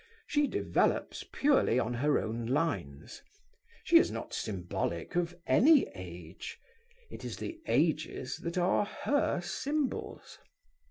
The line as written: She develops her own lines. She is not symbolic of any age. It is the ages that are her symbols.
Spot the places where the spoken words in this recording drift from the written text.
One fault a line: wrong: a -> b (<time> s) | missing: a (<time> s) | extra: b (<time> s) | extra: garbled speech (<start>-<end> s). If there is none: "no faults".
extra: purely on (1.3 s)